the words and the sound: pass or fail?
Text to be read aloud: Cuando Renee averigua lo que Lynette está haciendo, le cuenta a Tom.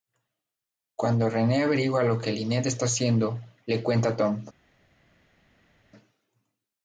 pass